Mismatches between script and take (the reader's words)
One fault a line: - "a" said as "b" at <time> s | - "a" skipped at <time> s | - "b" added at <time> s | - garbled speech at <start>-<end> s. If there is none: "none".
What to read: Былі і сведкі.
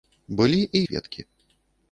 none